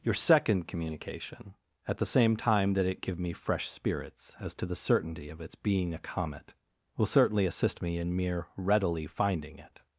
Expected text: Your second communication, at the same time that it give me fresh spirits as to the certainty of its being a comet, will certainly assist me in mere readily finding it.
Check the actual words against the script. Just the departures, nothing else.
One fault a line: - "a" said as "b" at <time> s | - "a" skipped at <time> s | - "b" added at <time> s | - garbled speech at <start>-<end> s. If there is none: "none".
none